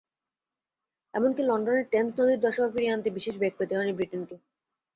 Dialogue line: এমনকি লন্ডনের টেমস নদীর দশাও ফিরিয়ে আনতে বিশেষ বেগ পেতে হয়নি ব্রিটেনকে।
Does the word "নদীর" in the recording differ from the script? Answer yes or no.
no